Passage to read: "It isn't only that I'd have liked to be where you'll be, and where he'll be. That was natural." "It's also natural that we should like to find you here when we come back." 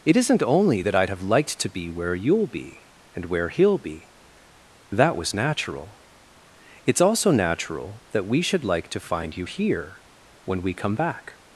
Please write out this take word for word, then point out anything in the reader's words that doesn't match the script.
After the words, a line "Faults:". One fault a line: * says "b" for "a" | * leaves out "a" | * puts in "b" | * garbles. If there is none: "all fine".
"It isn't only that I'd have liked to be where you'll be, and where he'll be. That was natural." "It's also natural that we should like to find you here when we come back."
Faults:
all fine